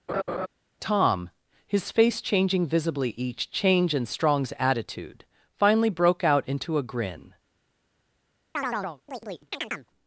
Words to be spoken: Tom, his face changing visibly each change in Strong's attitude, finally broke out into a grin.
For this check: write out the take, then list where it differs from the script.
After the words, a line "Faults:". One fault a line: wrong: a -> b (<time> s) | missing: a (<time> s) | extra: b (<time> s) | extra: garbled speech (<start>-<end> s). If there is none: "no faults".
Tom, his face changing visibly each change in Strong's attitude, finally broke out into a grin.
Faults:
no faults